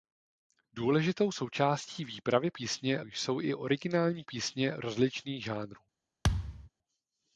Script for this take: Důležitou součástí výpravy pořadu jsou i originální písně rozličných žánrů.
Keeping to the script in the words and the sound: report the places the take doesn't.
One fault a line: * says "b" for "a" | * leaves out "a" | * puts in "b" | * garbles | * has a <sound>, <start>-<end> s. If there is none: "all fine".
* says "písně" for "pořadu"
* has a thud, 6.2-6.7 s